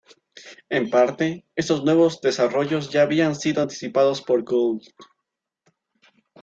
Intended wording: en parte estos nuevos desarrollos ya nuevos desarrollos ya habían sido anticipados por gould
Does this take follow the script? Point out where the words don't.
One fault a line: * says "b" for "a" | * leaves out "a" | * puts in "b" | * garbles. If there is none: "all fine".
* leaves out "nuevos desarrollos ya"